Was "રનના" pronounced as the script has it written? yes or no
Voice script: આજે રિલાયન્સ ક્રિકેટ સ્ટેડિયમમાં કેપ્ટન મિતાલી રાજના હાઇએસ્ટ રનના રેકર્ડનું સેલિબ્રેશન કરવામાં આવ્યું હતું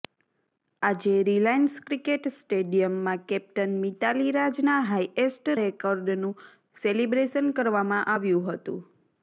no